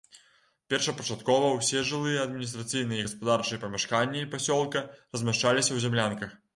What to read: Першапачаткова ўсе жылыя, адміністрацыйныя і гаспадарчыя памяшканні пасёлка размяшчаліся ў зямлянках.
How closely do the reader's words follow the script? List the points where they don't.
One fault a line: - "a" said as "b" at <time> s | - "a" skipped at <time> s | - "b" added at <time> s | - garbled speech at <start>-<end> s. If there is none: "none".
none